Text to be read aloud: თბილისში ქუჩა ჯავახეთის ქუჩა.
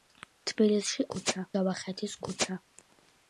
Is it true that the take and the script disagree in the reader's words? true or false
false